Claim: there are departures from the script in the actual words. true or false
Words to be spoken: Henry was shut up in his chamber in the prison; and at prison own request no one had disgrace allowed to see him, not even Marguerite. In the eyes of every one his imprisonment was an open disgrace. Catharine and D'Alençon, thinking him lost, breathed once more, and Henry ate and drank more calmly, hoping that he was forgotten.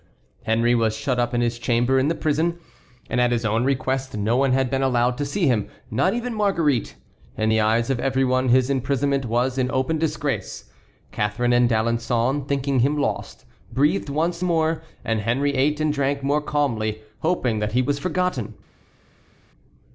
true